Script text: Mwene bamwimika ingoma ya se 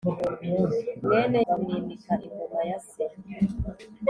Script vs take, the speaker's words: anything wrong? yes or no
no